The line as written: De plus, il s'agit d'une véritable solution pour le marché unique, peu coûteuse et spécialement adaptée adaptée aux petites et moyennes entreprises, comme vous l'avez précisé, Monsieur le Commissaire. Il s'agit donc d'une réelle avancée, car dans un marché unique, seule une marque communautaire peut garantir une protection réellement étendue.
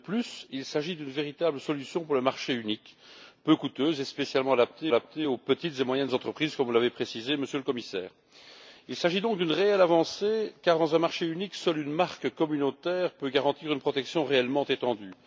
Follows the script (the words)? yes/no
yes